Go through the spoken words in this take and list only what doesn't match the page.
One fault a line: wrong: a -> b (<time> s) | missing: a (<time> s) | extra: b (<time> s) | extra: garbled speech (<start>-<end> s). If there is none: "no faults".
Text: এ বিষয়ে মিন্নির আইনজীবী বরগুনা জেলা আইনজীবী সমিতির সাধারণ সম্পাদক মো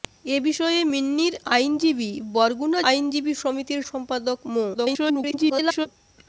missing: জেলা (2.8 s)
missing: সাধারণ (3.8 s)
extra: garbled speech (4.7-5.9 s)